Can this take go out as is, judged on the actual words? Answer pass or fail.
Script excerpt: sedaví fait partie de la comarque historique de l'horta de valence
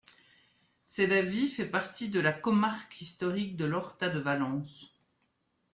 pass